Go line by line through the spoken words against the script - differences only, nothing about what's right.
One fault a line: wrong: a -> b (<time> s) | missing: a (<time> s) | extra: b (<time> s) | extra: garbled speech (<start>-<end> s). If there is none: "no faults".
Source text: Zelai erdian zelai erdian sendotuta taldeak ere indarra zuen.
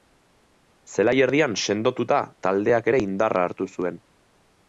missing: zelai erdian (1.5 s)
extra: hartu (3.5 s)